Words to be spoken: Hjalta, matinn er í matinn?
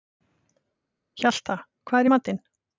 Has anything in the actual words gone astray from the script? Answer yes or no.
yes